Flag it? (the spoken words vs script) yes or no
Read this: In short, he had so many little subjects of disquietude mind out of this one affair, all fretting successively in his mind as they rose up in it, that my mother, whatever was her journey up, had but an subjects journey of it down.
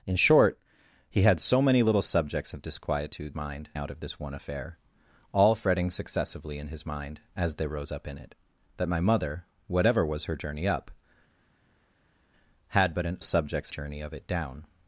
no